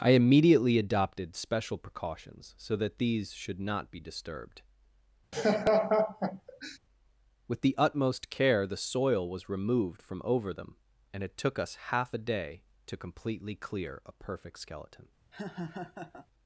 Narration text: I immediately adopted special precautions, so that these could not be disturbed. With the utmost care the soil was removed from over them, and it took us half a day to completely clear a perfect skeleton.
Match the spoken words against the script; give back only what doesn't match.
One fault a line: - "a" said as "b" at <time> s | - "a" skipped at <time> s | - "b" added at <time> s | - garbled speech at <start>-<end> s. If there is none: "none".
- "could" said as "should" at 3.3 s